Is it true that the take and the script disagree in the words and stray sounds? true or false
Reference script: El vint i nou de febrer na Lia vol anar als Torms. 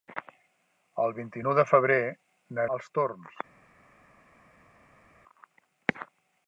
true